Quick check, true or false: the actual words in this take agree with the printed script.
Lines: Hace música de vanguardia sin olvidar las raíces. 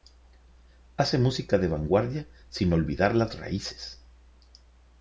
true